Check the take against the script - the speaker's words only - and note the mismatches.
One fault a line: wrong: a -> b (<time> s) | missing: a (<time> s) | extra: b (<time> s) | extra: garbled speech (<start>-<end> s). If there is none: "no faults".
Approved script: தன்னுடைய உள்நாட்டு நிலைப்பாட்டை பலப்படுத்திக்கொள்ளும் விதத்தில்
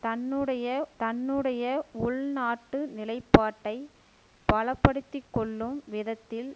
extra: தன்னுடைய (1.0 s)